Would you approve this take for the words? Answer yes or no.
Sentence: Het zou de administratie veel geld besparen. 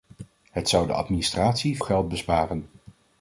no